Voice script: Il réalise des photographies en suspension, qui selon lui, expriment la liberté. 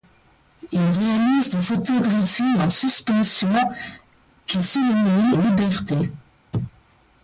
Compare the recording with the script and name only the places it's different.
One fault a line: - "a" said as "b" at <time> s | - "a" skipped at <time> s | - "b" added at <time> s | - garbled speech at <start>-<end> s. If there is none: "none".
- "lui expriment la" skipped at 5.3 s